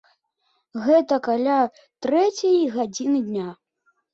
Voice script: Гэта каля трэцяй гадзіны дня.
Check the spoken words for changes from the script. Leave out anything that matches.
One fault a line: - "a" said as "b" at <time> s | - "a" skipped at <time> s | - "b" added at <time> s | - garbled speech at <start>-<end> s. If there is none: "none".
none